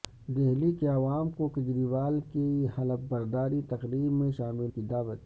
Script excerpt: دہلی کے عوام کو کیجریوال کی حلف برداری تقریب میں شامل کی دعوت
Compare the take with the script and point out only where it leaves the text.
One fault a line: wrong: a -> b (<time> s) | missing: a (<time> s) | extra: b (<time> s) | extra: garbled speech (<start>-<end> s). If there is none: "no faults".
no faults